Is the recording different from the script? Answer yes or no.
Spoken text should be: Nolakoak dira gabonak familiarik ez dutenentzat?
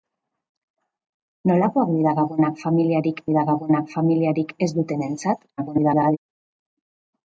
yes